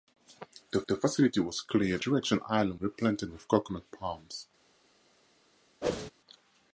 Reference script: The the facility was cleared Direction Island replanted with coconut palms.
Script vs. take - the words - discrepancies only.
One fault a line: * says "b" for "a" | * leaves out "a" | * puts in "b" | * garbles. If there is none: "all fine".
all fine